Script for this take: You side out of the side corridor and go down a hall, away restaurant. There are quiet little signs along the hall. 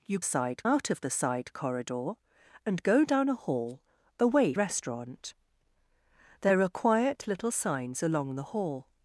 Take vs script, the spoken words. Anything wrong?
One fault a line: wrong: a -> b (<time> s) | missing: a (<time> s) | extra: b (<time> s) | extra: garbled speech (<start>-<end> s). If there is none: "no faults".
no faults